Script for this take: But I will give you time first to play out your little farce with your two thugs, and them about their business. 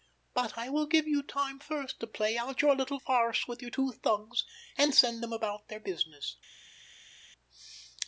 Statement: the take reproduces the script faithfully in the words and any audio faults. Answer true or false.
false